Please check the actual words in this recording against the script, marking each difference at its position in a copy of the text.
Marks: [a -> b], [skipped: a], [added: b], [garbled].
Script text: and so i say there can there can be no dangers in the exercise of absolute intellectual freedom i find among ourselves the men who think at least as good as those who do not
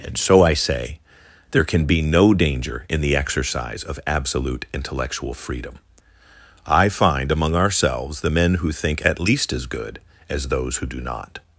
and so i say there can [skipped: there can] be no [dangers -> danger] in the exercise of absolute intellectual freedom i find among ourselves the men who think at least as good as those who do not